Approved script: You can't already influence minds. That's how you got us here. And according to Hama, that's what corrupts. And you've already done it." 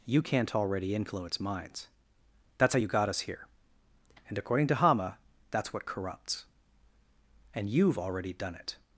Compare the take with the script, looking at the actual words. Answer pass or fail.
pass